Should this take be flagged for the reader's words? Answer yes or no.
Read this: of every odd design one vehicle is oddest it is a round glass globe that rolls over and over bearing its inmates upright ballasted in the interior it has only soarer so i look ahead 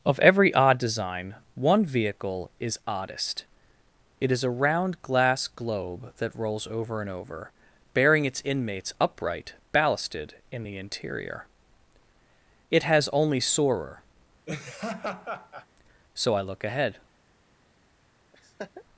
no